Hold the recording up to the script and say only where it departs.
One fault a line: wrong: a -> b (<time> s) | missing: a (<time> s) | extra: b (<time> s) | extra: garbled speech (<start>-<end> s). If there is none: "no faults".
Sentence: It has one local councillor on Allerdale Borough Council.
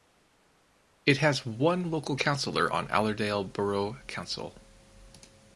no faults